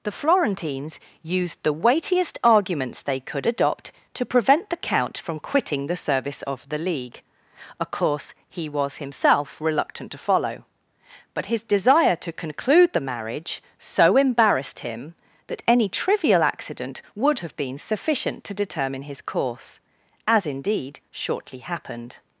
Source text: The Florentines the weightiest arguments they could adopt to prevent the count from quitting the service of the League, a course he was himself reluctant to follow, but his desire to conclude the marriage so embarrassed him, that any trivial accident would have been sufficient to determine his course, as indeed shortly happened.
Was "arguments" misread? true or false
false